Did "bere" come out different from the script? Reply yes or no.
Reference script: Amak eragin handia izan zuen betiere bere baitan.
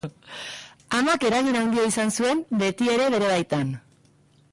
no